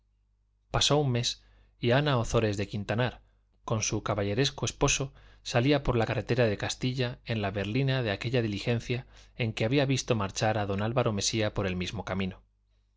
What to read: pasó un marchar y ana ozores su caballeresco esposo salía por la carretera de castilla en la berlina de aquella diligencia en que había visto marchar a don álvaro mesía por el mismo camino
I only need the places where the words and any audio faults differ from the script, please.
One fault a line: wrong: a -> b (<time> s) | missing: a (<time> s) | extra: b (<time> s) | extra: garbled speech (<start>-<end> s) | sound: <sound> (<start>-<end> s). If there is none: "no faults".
wrong: marchar -> mes (1.1 s)
extra: de quintanar con (2.6 s)